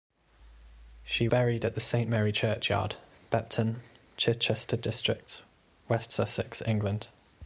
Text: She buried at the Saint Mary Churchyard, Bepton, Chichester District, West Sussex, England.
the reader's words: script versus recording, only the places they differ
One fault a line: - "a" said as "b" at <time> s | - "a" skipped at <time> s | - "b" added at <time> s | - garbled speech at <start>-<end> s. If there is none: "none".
none